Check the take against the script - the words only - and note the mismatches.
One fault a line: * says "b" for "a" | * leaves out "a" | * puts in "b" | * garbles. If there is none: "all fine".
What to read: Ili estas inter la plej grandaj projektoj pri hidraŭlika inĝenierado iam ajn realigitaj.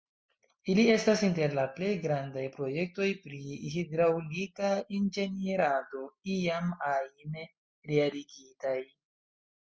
all fine